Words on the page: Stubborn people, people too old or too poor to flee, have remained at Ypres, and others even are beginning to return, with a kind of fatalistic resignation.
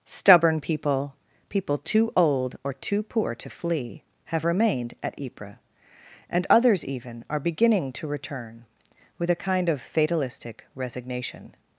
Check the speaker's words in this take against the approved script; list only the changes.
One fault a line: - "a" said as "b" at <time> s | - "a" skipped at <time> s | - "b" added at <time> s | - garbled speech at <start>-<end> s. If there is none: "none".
none